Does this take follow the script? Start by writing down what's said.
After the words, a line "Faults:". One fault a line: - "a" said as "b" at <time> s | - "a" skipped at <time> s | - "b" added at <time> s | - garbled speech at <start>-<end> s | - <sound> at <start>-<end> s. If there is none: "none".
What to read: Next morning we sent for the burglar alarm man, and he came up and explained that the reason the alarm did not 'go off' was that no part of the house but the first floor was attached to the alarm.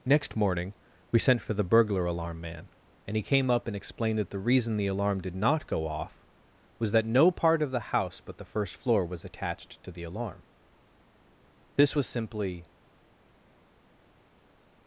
Next morning we sent for the burglar alarm man, and he came up and explained that the reason the alarm did not 'go off' was that no part of the house but the first floor was attached to the alarm. This was simply
Faults:
- "This was simply" added at 11.8 s